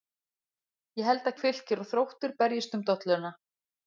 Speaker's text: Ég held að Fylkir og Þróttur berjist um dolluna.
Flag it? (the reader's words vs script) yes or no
no